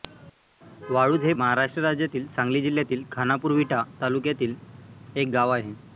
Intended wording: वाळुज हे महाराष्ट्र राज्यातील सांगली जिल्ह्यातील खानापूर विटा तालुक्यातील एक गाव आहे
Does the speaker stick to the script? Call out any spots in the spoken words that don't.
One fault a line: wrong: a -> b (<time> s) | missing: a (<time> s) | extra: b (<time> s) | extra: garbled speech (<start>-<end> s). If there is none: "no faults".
no faults